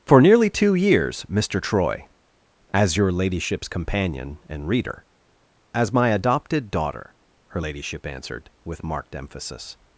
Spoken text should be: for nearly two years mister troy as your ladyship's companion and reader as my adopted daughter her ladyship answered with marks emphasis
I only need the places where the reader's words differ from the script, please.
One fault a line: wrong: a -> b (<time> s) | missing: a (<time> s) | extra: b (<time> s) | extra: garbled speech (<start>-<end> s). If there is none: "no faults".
wrong: marks -> marked (8.8 s)